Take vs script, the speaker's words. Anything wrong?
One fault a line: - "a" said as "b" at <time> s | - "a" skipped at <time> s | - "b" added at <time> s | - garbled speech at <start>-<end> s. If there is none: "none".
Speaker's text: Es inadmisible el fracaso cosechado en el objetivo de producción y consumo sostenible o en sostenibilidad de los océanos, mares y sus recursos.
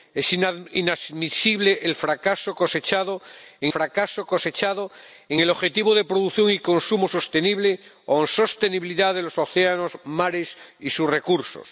- "fracaso cosechado en" added at 3.7 s